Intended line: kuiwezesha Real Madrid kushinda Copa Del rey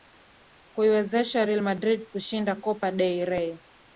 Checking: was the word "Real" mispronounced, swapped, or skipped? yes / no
no